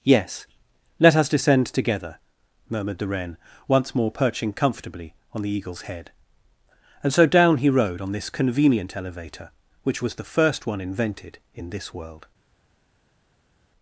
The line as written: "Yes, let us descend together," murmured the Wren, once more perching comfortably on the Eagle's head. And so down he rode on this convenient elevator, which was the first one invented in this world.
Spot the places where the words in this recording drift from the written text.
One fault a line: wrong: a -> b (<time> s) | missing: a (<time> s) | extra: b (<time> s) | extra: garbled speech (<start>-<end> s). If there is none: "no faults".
no faults